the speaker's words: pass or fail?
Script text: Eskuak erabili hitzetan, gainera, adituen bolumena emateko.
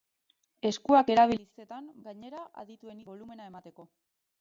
pass